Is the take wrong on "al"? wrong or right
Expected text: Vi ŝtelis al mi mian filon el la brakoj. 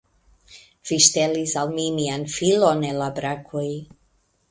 right